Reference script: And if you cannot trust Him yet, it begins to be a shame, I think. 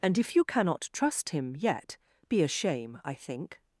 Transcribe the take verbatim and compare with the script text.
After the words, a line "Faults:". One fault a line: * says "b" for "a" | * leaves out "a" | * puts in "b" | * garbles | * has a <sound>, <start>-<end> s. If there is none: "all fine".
And if you cannot trust Him yet, be a shame, I think.
Faults:
* leaves out "it begins to"